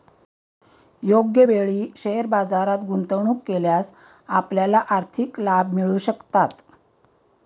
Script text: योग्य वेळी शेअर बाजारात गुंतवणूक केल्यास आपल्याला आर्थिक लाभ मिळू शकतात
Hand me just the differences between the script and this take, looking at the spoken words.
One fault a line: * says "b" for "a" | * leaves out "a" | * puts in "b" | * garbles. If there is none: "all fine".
all fine